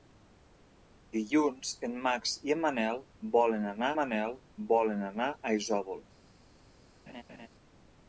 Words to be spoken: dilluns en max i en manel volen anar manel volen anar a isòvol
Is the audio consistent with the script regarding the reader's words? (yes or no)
yes